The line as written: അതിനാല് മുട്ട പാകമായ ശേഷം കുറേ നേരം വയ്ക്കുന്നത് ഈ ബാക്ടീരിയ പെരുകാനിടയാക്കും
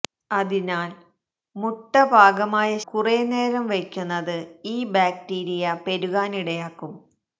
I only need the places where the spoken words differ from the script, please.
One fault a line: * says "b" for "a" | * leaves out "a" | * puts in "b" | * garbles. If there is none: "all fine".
* leaves out "ശേഷം"